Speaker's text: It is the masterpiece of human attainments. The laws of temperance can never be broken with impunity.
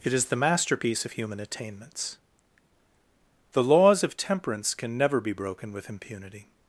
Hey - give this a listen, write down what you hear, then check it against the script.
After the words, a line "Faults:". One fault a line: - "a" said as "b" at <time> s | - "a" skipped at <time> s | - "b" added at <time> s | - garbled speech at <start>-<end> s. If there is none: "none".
It is the masterpiece of human attainments. The laws of temperance can never be broken with impunity.
Faults:
none